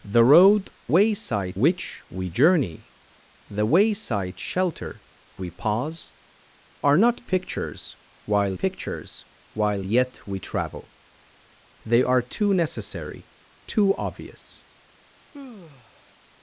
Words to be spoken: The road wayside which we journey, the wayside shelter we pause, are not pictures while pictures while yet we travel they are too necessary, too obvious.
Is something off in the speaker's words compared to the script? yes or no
no